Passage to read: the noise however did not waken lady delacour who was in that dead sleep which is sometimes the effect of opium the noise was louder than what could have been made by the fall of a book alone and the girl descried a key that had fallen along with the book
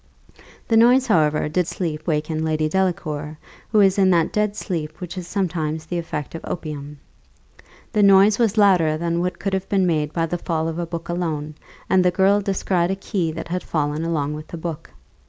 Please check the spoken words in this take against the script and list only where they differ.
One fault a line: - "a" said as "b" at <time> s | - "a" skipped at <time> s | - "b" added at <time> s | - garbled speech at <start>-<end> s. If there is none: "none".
- "not" said as "sleep" at 1.6 s